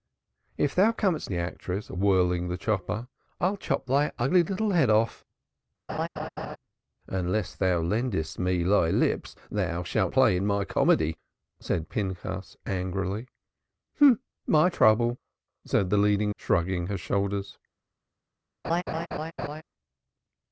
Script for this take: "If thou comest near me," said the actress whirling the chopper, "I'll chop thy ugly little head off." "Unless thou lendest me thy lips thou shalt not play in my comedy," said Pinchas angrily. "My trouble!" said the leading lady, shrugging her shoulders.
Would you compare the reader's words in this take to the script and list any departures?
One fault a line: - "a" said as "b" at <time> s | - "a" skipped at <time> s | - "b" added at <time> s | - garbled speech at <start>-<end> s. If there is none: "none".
- "near me said" skipped at 1.3 s
- "not" skipped at 10.1 s
- "lady" skipped at 16.3 s